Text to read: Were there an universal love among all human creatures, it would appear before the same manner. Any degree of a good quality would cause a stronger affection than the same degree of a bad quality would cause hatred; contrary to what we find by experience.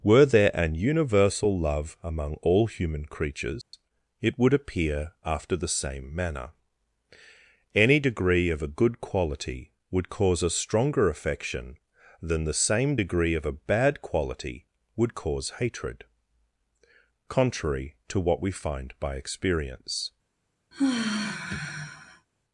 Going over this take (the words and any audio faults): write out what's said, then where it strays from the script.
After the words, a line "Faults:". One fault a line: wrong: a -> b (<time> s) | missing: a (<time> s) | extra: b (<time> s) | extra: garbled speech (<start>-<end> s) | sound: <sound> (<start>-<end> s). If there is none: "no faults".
Were there an universal love among all human creatures, it would appear after the same manner. Any degree of a good quality would cause a stronger affection than the same degree of a bad quality would cause hatred; contrary to what we find by experience.
Faults:
sound: dropout (3.6-3.7 s)
wrong: before -> after (5.2 s)
sound: sigh (20.7-22.3 s)